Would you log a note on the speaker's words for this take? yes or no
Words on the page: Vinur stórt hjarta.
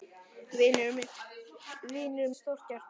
no